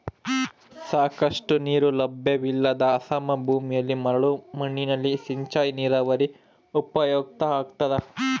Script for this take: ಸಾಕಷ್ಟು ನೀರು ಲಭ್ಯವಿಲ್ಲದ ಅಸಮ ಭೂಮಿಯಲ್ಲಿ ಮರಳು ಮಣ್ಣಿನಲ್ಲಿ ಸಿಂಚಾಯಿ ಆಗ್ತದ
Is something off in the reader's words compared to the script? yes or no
yes